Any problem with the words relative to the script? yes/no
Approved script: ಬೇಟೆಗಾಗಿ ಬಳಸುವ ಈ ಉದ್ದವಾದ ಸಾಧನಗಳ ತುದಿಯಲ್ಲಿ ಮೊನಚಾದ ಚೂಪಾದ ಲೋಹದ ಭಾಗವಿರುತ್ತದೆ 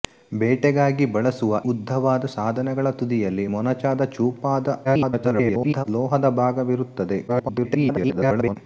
yes